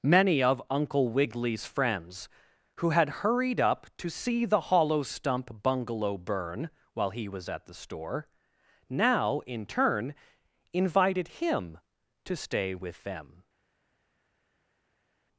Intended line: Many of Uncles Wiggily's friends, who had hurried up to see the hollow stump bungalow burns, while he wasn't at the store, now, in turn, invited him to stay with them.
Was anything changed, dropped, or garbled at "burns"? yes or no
yes